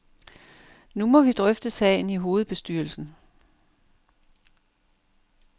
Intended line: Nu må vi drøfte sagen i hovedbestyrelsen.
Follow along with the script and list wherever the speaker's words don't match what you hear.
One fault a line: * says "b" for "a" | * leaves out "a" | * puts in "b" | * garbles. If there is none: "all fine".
all fine